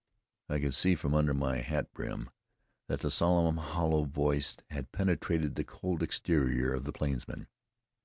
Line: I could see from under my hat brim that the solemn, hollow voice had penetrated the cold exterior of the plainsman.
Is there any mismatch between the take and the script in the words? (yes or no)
no